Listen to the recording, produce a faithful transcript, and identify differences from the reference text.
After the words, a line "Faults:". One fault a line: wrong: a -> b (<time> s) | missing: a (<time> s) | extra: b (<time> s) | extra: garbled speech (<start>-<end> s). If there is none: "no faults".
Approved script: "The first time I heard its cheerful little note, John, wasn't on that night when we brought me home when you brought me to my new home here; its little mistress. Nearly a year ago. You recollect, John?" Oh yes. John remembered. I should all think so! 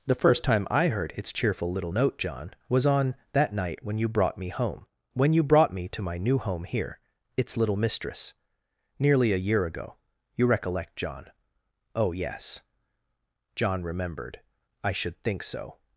"The first time I heard its cheerful little note, John, was on that night when you brought me home when you brought me to my new home here; its little mistress. Nearly a year ago. You recollect, John?" Oh yes. John remembered. I should think so!
Faults:
wrong: wasn't -> was (2.7 s)
wrong: we -> you (4.0 s)
missing: all (15.2 s)